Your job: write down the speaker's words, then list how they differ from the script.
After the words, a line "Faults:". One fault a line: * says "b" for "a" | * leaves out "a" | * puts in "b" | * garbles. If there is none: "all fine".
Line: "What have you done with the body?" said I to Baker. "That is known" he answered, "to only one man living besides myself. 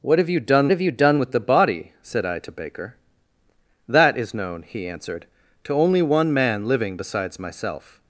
"What have you done have you done with the body?" said I to Baker. "That is known" he answered, "to only one man living besides myself.
Faults:
* puts in "have you done"